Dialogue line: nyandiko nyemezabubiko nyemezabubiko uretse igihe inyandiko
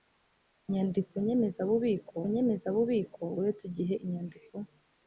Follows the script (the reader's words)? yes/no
yes